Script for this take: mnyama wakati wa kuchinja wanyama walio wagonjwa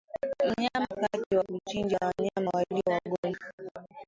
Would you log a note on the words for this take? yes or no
no